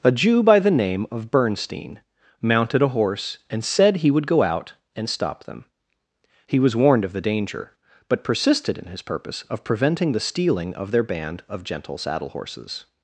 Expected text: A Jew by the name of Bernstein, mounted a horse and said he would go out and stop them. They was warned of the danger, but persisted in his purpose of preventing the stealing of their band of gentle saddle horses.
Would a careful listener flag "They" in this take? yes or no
yes